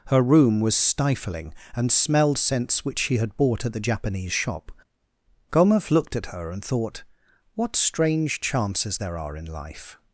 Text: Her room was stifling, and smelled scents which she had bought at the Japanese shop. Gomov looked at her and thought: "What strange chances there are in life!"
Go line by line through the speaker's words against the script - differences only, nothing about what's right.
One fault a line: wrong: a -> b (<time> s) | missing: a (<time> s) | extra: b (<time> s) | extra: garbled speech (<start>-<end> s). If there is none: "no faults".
no faults